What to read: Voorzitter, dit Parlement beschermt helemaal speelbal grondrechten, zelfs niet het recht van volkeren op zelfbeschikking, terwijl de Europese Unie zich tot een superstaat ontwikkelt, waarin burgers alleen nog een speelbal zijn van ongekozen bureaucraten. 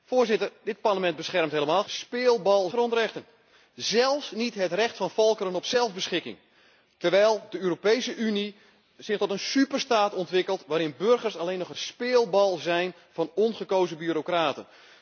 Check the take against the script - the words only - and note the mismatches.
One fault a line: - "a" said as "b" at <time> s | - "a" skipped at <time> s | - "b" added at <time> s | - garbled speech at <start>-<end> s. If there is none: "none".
none